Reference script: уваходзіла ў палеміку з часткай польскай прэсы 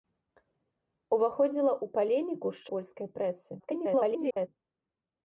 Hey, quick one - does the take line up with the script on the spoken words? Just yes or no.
no